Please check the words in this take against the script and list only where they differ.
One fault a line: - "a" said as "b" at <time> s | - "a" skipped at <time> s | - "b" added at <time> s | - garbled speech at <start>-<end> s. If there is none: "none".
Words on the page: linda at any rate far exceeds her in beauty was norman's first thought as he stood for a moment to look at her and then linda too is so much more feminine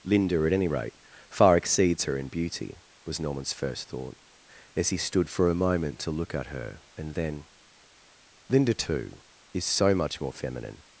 none